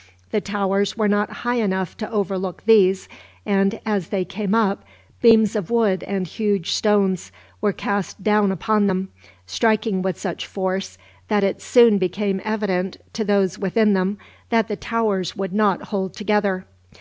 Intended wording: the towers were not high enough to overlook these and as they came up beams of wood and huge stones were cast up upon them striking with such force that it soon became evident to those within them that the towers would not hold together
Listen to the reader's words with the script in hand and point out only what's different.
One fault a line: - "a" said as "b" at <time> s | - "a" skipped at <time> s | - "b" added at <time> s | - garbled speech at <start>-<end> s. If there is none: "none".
- "up" said as "down" at 8.2 s